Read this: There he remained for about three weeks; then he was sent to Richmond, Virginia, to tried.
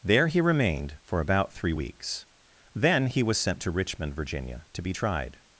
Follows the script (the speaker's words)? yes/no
no